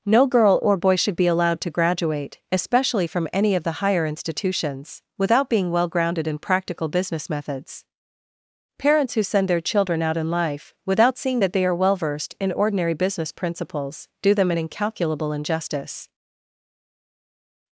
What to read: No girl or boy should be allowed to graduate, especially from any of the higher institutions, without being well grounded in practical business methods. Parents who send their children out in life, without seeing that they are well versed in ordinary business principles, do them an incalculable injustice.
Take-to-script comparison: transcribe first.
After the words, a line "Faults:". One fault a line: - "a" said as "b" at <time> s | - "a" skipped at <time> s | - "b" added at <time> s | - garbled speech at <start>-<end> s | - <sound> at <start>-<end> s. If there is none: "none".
No girl or boy should be allowed to graduate, especially from any of the higher institutions, without being well grounded in practical business methods. Parents who send their children out in life, without seeing that they are well versed in ordinary business principles, do them an incalculable injustice.
Faults:
none